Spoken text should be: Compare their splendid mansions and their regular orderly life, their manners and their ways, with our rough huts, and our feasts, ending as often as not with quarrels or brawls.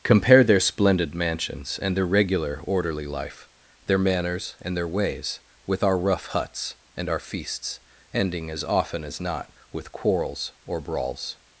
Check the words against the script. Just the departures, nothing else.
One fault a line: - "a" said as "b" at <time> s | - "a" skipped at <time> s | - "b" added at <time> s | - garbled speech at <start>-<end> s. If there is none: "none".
none